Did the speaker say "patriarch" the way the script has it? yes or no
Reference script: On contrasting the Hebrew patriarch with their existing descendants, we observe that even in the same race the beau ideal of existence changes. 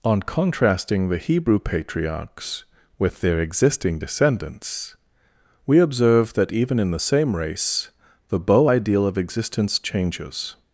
no